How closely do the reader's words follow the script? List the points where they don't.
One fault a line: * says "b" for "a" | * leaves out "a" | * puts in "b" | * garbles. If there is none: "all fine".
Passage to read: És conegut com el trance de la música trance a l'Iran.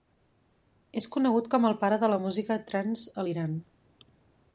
* says "pare" for "trance"